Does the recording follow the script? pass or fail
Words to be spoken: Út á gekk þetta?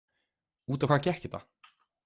fail